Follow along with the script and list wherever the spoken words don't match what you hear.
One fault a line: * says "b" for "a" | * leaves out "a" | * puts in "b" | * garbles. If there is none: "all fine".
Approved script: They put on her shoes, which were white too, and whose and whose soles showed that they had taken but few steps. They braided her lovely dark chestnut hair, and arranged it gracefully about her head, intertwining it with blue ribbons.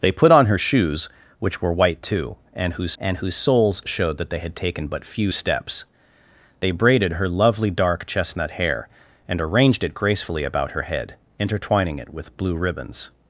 all fine